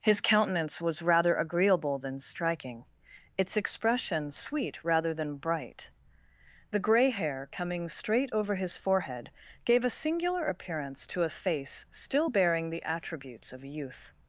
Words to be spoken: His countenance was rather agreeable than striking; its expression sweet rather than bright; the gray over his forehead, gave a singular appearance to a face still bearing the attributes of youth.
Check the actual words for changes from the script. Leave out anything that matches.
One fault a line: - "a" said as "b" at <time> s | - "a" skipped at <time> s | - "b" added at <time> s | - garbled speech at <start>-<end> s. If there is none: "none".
- "hair coming straight" added at 7.1 s